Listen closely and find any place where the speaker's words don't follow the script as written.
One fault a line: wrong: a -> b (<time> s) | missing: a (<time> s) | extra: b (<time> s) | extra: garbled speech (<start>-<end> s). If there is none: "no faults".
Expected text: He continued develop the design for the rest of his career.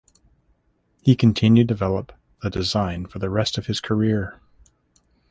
no faults